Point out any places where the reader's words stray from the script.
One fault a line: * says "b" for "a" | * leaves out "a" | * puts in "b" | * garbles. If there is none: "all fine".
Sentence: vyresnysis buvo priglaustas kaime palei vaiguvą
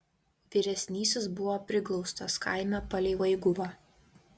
all fine